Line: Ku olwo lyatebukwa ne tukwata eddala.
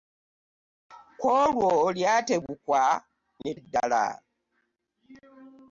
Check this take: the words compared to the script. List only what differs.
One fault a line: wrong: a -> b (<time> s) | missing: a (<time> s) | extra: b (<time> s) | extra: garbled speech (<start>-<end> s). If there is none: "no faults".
missing: tukwata (3.5 s)